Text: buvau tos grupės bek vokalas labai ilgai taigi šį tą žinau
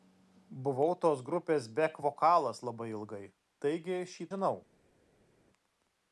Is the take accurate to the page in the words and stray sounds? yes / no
no